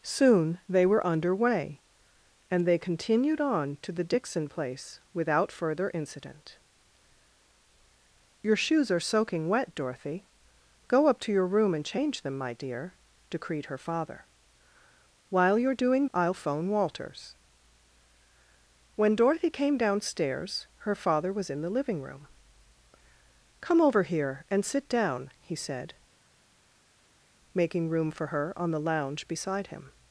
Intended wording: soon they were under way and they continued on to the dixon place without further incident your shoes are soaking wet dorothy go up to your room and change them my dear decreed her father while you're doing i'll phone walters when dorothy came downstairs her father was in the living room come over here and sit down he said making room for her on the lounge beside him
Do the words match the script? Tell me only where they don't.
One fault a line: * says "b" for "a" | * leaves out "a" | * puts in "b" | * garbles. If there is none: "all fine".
all fine